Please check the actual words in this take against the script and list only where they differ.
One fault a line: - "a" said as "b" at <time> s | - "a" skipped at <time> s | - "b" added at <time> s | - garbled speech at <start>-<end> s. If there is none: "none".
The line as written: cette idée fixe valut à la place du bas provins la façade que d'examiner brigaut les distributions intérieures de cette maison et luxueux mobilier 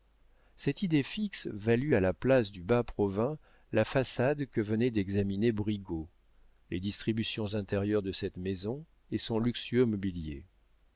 - "venait" added at 4.6 s
- "son" added at 9.2 s